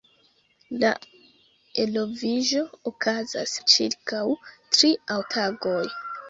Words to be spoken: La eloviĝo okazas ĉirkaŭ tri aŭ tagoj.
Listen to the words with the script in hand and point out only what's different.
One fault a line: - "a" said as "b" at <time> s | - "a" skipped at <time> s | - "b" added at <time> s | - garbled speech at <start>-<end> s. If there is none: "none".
none